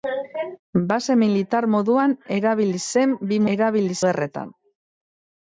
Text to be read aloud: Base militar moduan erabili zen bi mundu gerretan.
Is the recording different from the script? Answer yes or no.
yes